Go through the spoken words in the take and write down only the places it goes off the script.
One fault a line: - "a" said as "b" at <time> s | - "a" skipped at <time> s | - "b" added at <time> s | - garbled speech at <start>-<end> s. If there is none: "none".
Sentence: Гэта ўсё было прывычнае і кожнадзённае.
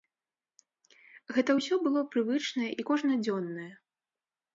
none